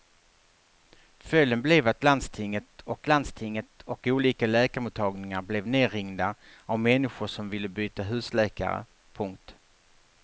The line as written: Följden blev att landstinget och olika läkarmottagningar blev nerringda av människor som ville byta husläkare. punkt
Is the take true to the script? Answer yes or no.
no